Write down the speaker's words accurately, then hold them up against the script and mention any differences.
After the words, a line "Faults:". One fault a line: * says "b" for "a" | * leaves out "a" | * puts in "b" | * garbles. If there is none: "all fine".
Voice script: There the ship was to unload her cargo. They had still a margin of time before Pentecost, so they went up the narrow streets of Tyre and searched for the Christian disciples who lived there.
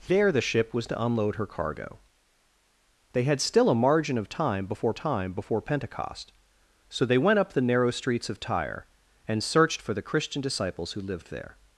There the ship was to unload her cargo. They had still a margin of time before time before Pentecost, so they went up the narrow streets of Tyre and searched for the Christian disciples who lived there.
Faults:
* puts in "time before"